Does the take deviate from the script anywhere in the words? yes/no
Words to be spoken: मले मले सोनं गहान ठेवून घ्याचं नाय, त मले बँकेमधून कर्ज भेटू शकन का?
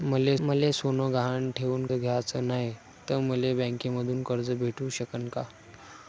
no